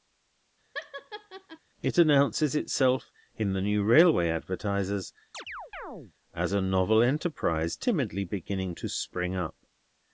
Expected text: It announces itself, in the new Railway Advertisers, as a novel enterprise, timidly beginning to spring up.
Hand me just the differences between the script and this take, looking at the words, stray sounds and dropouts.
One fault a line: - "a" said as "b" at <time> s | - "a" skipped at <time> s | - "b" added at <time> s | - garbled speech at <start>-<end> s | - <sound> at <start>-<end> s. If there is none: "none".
- laugh at 0.7-1.6 s
- chirp at 5.3-6.1 s